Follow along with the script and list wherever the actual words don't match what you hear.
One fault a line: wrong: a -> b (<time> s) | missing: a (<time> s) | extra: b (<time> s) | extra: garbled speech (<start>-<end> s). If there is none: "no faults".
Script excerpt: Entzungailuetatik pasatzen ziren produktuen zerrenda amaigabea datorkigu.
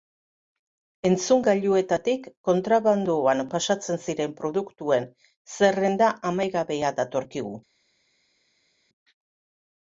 extra: kontrabandoan (2.5 s)